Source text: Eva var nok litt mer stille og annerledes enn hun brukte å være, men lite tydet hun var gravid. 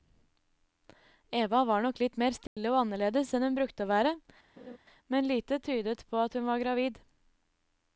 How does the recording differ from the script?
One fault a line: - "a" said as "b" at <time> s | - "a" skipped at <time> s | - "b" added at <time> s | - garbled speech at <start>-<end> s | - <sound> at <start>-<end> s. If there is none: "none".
- dropout at 2.5-2.6 s
- laugh at 4.6-4.8 s
- "på at" added at 6.1 s